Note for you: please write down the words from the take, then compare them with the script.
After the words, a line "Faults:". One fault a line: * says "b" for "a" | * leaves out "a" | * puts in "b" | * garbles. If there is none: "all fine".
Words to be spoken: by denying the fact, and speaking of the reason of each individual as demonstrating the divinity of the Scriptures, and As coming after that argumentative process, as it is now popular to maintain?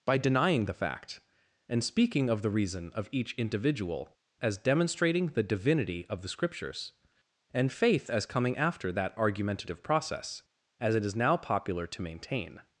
by denying the fact, and speaking of the reason of each individual as demonstrating the divinity of the Scriptures, and Faith as coming after that argumentative process, as it is now popular to maintain?
Faults:
* puts in "Faith"